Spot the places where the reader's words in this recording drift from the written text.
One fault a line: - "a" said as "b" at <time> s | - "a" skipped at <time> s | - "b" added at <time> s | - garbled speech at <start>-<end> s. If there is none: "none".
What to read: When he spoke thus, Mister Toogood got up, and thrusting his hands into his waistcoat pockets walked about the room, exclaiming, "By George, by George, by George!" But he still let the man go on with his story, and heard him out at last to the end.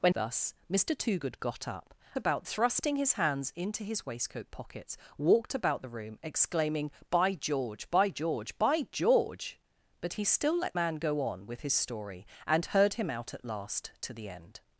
- "he spoke" skipped at 0.1 s
- "and" said as "about" at 2.1 s
- "the" skipped at 10.8 s